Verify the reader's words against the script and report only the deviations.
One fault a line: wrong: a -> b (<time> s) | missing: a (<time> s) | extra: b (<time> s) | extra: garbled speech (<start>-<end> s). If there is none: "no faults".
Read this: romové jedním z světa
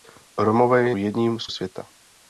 no faults